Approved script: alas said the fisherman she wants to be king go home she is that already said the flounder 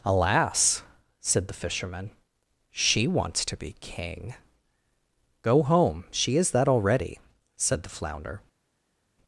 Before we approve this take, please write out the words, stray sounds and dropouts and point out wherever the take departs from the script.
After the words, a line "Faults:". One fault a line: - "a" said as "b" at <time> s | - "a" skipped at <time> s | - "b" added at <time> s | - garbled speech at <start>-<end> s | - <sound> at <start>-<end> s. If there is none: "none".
alas said the fisherman she wants to be king go home she is that already said the flounder
Faults:
none